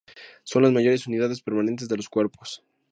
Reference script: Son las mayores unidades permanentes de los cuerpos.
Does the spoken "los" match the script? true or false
true